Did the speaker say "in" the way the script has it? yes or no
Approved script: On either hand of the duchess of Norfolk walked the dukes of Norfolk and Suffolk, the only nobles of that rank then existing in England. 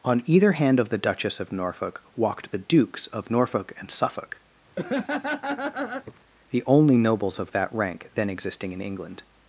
yes